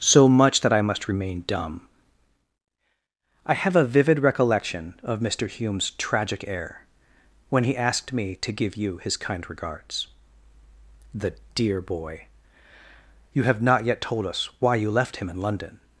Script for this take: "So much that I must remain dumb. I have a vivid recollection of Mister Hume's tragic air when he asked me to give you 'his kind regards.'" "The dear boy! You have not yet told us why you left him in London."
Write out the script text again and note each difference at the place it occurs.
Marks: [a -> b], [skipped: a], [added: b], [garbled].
"So much that I must remain dumb. I have a vivid recollection of Mister Hume's tragic air when he asked me to give you 'his kind regards.'" "The dear boy! You have not yet told us why you left him in London."